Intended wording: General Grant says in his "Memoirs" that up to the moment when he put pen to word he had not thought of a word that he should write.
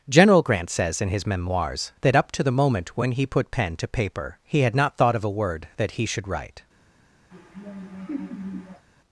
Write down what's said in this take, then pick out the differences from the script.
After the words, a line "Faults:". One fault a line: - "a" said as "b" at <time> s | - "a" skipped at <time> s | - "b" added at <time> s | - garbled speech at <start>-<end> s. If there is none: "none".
General Grant says in his "Memoirs" that up to the moment when he put pen to paper he had not thought of a word that he should write.
Faults:
- "word" said as "paper" at 3.9 s